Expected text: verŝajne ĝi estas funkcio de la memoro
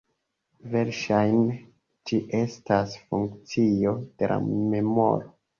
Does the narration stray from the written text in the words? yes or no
no